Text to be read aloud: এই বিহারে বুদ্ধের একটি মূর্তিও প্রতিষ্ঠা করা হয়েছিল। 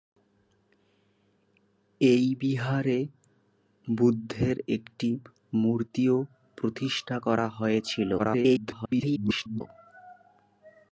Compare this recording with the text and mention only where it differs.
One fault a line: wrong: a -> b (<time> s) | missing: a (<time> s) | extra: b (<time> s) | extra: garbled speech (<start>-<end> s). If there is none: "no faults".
extra: garbled speech (8.2-9.6 s)